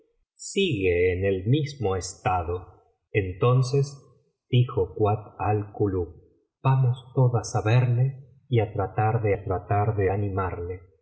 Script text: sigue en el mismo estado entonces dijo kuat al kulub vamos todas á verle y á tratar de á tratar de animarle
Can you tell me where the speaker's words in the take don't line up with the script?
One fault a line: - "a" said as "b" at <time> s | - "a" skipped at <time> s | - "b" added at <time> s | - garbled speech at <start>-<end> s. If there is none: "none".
none